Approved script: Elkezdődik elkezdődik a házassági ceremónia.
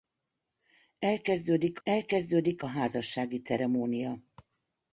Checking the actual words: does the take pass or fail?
pass